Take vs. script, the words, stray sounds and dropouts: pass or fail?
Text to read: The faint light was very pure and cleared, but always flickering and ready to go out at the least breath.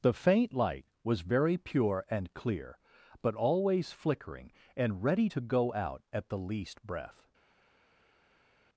fail